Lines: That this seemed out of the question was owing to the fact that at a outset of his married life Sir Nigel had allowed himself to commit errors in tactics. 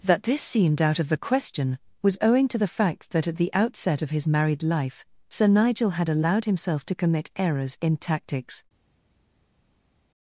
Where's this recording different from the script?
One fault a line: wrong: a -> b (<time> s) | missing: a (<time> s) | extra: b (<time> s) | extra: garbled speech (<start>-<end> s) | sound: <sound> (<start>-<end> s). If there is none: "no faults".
wrong: a -> the (3.4 s)